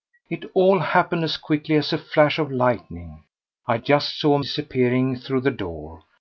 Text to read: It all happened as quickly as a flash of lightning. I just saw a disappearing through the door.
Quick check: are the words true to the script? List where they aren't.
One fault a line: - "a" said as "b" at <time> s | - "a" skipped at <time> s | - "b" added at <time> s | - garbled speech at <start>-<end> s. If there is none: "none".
none